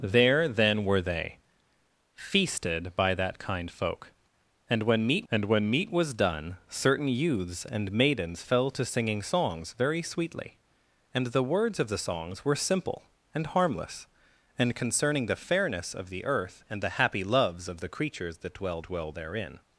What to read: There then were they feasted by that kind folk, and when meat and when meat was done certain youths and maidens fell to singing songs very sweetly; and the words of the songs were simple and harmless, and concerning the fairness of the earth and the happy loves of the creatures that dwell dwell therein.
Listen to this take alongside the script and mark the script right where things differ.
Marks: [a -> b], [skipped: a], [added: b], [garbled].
There then were they feasted by that kind folk, and when meat and when meat was done certain youths and maidens fell to singing songs very sweetly; and the words of the songs were simple and harmless, and concerning the fairness of the earth and the happy loves of the creatures that dwell dwell therein.